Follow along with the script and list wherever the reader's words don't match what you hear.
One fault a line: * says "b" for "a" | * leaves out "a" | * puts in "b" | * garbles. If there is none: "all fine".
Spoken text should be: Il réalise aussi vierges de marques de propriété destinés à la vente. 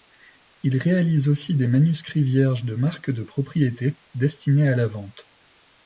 * puts in "des manuscrits"